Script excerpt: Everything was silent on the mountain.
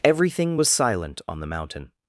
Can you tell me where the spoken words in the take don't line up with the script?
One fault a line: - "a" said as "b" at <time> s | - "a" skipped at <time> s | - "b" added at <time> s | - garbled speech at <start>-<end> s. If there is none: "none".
none